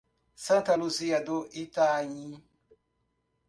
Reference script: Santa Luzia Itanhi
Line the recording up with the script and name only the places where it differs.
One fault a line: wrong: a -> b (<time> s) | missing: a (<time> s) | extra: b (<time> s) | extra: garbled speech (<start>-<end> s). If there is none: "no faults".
extra: do (1.2 s)